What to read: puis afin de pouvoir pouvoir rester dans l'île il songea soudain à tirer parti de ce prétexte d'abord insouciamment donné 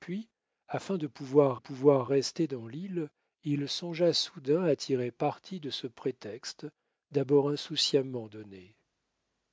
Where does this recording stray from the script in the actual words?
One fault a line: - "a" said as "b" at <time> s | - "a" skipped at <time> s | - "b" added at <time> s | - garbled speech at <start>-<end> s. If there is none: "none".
none